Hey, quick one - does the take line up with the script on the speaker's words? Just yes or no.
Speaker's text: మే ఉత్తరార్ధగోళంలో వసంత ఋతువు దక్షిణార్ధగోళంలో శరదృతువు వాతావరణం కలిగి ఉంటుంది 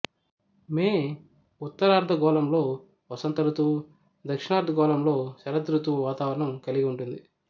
yes